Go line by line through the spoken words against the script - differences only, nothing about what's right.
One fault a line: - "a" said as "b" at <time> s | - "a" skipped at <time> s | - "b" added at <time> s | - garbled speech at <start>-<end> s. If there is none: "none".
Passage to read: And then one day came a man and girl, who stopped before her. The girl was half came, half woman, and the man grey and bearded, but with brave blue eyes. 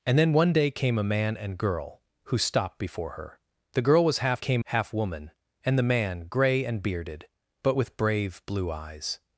none